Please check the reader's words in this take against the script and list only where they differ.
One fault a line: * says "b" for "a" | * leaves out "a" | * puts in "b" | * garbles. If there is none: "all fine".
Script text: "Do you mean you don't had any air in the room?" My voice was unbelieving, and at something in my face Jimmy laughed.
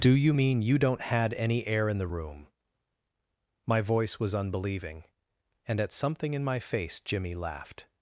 all fine